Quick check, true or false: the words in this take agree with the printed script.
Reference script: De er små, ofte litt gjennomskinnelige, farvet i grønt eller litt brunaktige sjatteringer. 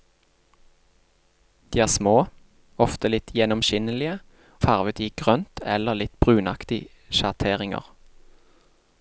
true